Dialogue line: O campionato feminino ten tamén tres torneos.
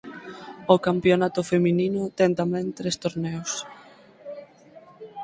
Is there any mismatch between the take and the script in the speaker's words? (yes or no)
no